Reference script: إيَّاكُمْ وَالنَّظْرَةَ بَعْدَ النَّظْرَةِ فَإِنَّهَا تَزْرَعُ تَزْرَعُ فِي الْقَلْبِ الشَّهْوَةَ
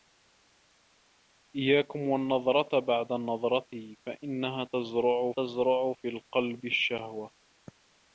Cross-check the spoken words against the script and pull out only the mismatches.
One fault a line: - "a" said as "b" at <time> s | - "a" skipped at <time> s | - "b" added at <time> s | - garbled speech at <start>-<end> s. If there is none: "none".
none